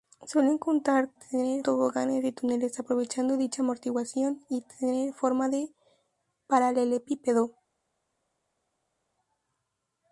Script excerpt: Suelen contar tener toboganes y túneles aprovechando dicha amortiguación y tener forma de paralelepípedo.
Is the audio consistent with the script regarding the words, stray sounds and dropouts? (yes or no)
yes